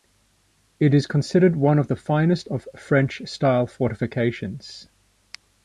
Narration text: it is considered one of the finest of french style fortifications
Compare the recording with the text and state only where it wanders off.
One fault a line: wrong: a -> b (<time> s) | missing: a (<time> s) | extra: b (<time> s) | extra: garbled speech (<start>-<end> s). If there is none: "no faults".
no faults